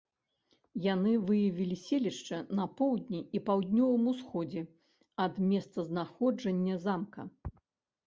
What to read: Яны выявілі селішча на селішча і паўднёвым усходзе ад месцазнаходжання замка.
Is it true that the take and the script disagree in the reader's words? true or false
true